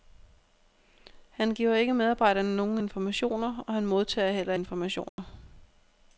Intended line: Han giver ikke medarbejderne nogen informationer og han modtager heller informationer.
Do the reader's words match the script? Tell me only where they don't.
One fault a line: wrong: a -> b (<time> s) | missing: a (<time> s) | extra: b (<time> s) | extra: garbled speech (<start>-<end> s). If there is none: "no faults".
no faults